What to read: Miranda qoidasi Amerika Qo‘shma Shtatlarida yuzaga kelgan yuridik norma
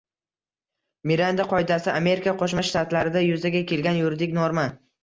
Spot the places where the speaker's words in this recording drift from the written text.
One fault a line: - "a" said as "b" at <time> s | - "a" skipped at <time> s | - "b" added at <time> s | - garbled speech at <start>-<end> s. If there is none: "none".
none